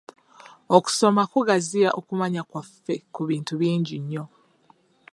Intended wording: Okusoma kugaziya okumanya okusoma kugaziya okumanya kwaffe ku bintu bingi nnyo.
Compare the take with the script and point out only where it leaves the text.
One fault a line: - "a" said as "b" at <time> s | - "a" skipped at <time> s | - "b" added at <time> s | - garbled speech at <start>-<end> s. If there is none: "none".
- "okusoma kugaziya okumanya" skipped at 2.4 s